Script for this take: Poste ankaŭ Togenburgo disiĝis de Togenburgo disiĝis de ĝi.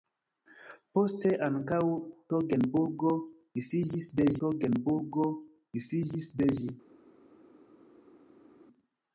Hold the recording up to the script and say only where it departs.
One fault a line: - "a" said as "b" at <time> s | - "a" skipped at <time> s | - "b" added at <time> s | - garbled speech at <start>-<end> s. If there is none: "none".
none